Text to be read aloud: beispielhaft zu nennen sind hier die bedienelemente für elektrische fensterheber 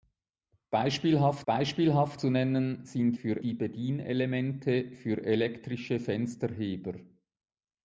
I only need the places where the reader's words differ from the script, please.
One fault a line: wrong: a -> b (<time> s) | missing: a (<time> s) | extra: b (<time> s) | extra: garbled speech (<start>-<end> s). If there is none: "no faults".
extra: beispielhaft (1.5 s)
wrong: hier -> für (3.1 s)